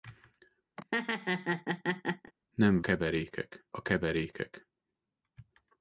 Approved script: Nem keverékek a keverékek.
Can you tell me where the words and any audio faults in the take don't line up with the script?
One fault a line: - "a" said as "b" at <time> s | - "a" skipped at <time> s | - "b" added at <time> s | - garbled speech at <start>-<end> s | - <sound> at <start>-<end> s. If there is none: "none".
- laugh at 0.8-2.3 s